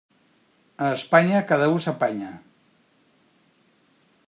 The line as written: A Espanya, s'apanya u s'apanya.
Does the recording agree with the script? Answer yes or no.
no